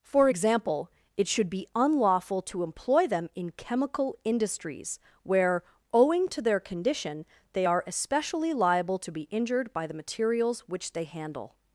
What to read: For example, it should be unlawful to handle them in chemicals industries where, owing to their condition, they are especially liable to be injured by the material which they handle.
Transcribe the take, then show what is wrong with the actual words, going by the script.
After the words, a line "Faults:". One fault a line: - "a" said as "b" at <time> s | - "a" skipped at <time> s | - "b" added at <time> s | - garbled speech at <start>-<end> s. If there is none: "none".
For example, it should be unlawful to employ them in chemical industries where, owing to their condition, they are especially liable to be injured by the materials which they handle.
Faults:
- "handle" said as "employ" at 2.6 s
- "chemicals" said as "chemical" at 3.5 s
- "material" said as "materials" at 9.9 s